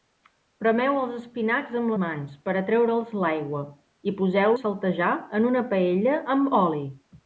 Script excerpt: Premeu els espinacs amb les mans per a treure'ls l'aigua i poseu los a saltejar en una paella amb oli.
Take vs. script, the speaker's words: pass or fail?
fail